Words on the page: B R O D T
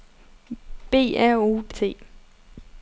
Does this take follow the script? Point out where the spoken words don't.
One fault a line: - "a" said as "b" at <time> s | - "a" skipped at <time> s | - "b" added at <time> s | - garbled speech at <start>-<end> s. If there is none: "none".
none